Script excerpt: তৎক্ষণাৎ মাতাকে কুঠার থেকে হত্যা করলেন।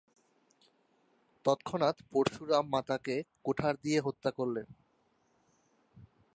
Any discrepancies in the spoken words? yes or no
yes